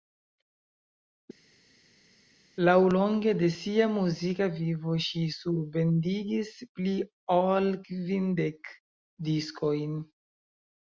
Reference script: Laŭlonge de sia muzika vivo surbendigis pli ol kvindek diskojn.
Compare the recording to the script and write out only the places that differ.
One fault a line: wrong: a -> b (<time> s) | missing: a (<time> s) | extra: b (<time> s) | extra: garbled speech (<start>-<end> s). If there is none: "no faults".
extra: ŝi (5.0 s)